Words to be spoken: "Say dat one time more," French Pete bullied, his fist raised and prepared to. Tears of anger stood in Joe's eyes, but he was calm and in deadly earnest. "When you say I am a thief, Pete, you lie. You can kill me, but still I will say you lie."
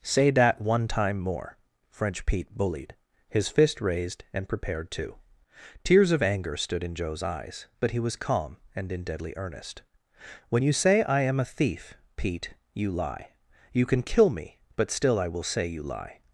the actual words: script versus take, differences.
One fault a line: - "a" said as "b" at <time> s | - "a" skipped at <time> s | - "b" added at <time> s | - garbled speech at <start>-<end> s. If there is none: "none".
none